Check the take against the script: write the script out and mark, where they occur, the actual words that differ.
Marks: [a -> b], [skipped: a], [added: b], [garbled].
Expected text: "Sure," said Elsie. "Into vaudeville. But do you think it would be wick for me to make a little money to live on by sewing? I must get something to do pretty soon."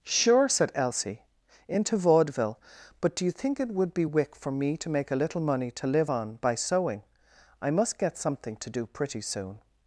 "Sure," said Elsie. "Into vaudeville. But do you think it would be wick for me to make a little money to live on by sewing? I must get something to do pretty soon."